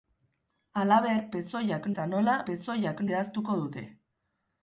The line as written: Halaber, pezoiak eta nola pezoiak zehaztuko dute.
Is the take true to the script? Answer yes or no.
yes